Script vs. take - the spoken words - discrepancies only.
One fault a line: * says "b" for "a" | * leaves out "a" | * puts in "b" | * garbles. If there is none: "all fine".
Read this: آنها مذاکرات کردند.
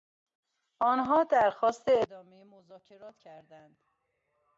* puts in "درخواست ادامهی"